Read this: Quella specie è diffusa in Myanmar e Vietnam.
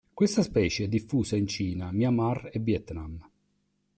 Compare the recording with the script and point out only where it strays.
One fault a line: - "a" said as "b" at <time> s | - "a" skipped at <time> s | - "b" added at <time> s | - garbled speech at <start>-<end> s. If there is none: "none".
- "Quella" said as "Questa" at 0.1 s
- "Cina" added at 1.4 s